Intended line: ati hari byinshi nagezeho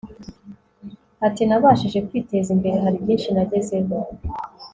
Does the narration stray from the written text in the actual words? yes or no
yes